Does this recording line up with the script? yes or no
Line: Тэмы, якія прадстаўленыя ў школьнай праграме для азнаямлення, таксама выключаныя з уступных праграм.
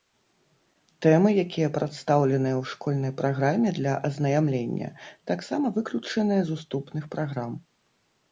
yes